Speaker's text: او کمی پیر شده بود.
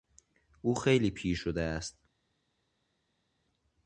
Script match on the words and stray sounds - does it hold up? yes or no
no